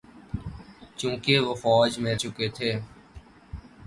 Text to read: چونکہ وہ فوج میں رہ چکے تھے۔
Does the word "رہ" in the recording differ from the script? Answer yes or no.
yes